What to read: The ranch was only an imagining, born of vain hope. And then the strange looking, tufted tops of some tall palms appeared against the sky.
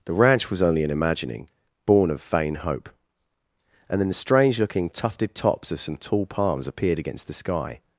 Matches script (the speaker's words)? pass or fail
pass